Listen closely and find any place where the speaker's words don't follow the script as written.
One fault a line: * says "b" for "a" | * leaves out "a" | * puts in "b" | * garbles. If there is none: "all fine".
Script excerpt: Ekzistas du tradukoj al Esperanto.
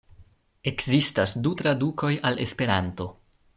all fine